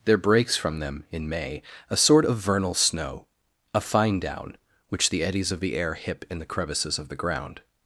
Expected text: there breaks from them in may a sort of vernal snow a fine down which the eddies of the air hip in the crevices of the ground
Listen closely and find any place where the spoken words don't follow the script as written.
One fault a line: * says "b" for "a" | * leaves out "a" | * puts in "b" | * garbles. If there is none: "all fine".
all fine